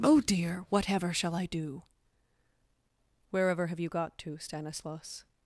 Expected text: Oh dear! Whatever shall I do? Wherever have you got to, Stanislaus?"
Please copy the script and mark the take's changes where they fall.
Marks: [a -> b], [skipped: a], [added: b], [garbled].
Oh dear! Whatever shall I do? Wherever have you got to, Stanislaus?"